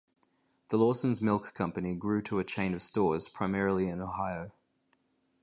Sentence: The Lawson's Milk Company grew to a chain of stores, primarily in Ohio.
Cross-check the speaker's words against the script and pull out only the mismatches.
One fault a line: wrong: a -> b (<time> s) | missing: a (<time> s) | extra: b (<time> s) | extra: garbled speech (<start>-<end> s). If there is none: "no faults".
no faults